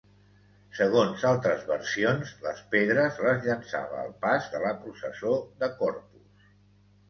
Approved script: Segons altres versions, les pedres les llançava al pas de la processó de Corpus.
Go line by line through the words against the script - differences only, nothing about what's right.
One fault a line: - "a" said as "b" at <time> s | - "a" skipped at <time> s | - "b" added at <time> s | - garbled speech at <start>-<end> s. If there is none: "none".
none